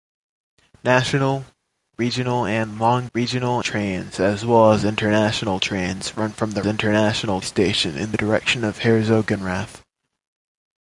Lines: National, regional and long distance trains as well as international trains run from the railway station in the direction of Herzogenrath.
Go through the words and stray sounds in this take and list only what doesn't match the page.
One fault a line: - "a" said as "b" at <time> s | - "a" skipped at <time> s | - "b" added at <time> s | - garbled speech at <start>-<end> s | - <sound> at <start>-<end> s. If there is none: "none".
- "distance" said as "regional" at 3.1 s
- "railway" said as "international" at 6.6 s